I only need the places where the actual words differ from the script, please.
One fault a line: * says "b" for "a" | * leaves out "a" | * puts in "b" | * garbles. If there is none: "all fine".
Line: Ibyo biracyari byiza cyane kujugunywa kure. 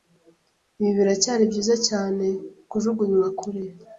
* says "Ibi" for "Ibyo"